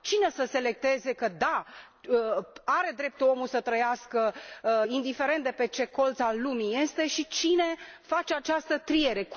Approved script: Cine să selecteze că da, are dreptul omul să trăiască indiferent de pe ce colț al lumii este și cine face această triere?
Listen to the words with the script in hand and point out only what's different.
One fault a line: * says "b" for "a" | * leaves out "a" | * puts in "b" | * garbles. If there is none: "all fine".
all fine